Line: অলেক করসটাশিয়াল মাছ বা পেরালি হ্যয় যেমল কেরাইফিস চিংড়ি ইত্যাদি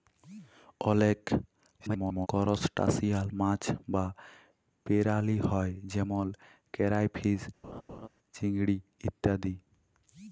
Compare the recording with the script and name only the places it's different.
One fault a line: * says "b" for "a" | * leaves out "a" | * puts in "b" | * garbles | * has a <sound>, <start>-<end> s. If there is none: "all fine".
* garbles
* has a laugh, 7.6-8.1 s